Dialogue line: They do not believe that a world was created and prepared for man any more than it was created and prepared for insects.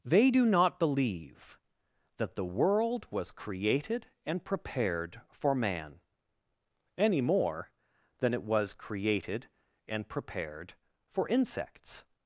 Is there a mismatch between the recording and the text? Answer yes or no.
yes